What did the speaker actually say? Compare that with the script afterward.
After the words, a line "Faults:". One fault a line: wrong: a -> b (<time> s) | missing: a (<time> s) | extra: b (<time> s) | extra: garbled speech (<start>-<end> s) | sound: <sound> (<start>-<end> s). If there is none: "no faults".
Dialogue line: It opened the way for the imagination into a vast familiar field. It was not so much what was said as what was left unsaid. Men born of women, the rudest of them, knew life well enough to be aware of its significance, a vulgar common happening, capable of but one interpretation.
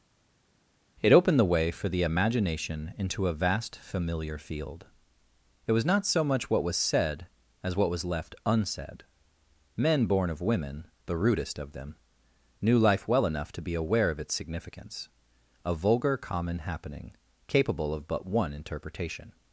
It opened the way for the imagination into a vast familiar field. It was not so much what was said as what was left unsaid. Men born of women, the rudest of them, knew life well enough to be aware of its significance, a vulgar common happening, capable of but one interpretation.
Faults:
no faults